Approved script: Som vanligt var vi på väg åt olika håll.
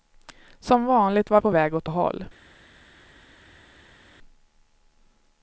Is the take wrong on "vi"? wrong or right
wrong